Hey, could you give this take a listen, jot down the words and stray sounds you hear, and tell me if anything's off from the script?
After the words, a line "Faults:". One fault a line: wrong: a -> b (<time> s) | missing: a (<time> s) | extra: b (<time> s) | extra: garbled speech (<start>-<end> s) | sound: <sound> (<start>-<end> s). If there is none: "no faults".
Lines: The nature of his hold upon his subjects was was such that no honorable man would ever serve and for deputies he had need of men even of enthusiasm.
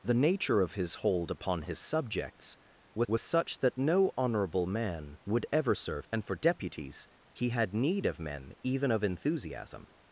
The nature of his hold upon his subjects was was such that no honorable man would ever serve and for deputies he had need of men even of enthusiasm.
Faults:
no faults